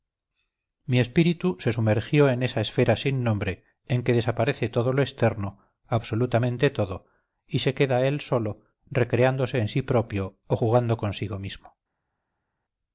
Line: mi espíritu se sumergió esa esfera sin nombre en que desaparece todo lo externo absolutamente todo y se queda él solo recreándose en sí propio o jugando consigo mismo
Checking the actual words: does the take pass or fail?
fail